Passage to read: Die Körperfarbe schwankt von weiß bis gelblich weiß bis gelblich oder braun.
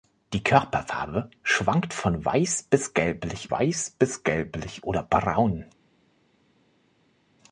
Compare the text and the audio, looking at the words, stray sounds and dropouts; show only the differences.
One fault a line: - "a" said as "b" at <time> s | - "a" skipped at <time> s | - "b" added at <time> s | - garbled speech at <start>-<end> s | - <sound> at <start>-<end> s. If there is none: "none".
none